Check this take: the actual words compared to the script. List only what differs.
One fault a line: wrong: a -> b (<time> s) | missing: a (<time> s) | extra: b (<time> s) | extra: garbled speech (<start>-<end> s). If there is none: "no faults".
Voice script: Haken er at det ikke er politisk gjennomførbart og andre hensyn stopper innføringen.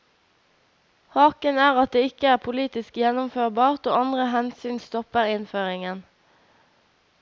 no faults